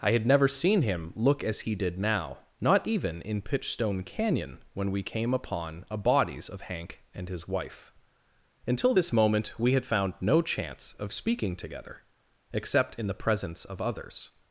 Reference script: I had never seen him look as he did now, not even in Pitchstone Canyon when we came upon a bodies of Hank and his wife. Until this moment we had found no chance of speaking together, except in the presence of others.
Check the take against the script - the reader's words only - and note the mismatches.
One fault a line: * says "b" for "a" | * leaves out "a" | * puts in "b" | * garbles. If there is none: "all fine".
all fine